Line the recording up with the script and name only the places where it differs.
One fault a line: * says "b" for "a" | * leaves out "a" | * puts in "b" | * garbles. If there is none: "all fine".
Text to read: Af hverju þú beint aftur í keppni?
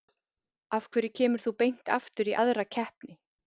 * puts in "kemur"
* puts in "aðra"